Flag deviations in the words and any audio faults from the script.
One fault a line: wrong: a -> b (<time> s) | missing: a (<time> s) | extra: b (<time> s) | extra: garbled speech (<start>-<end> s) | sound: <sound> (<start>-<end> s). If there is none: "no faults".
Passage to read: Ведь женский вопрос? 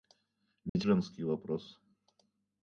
sound: dropout (0.7-0.8 s)